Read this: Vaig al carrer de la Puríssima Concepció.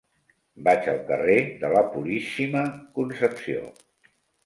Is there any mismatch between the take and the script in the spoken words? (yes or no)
no